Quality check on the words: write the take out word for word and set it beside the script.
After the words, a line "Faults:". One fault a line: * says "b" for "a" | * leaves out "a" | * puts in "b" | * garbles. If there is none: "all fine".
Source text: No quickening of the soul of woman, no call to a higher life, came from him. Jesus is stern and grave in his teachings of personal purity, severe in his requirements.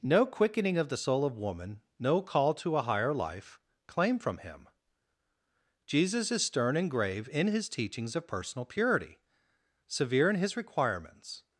No quickening of the soul of woman, no call to a higher life, claim from him. Jesus is stern and grave in his teachings of personal purity, severe in his requirements.
Faults:
* says "claim" for "came"